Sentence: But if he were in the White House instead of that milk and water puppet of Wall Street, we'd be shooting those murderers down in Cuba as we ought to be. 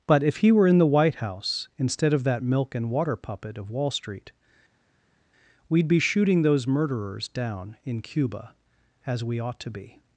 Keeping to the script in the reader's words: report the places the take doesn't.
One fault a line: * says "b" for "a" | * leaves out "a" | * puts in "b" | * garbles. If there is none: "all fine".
all fine